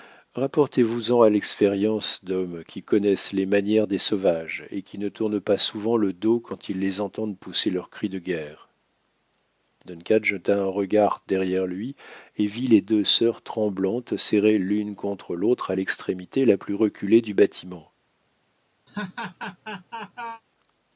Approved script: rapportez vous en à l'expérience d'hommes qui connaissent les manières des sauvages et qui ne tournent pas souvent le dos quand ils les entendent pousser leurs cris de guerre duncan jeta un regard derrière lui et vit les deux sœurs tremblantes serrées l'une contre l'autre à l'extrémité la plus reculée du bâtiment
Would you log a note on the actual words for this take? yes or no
no